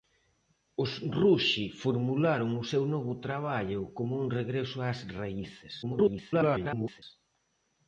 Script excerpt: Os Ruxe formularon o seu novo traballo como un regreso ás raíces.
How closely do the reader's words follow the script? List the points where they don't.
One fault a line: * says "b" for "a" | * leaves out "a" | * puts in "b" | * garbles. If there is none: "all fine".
* garbles